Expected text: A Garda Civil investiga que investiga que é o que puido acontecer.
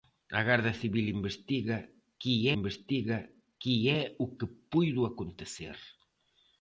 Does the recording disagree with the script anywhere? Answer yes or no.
no